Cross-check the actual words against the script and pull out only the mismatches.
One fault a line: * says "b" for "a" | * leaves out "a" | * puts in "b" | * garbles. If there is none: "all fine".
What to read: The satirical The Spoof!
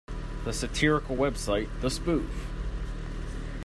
* puts in "website"